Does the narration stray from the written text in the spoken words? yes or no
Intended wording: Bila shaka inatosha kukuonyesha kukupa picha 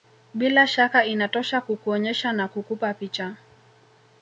yes